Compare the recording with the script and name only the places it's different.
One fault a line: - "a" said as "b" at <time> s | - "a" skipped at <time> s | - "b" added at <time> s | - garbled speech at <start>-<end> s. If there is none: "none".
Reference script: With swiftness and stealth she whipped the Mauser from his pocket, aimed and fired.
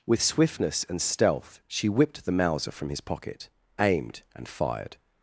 none